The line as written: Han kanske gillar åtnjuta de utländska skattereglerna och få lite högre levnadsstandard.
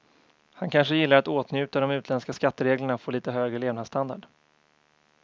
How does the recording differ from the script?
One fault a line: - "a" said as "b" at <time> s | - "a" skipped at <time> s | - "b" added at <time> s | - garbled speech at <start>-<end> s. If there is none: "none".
- "att" added at 1.2 s